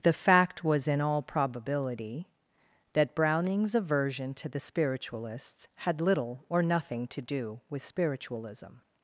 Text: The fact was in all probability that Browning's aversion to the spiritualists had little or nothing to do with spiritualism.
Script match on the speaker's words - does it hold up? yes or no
yes